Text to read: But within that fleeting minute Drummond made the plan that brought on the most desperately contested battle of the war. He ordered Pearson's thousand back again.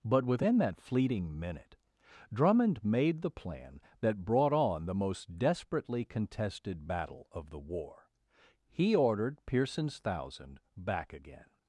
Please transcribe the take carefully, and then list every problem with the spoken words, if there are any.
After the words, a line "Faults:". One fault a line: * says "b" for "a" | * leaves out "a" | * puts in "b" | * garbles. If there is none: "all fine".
But within that fleeting minute Drummond made the plan that brought on the most desperately contested battle of the war. He ordered Pearson's thousand back again.
Faults:
all fine